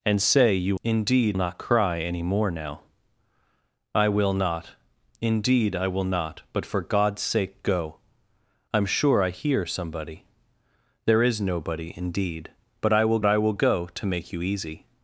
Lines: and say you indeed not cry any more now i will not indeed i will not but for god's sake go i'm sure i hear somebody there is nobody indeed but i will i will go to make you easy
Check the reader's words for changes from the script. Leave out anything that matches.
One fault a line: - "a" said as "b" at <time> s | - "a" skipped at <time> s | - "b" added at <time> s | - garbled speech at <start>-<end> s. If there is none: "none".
none